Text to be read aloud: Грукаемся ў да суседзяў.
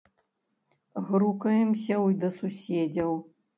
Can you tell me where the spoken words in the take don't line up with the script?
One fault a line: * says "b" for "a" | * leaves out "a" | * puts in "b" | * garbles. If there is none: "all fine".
all fine